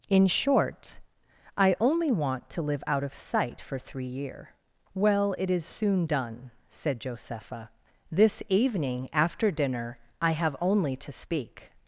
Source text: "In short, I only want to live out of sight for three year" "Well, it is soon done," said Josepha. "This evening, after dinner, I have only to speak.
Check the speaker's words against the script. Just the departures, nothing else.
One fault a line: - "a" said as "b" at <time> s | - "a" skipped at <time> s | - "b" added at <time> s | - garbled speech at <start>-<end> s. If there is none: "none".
none